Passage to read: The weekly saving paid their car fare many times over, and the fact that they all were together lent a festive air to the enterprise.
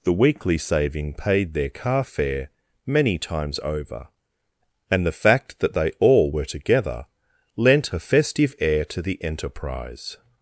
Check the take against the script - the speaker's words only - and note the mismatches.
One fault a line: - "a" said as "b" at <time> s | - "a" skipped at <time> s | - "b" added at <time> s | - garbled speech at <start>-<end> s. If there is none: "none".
none